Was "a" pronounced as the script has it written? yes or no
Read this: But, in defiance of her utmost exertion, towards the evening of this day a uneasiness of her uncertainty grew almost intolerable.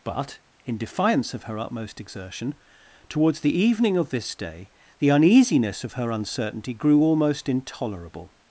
no